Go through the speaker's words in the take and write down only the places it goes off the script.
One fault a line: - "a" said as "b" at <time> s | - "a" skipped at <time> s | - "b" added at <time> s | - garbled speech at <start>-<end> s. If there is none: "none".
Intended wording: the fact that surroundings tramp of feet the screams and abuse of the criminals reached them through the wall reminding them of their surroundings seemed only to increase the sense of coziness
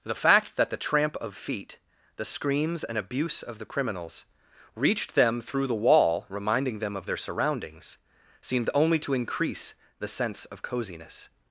- "surroundings" said as "the" at 0.7 s